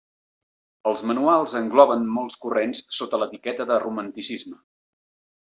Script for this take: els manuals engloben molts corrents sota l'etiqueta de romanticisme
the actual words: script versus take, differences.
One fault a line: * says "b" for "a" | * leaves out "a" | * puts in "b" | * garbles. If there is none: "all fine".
all fine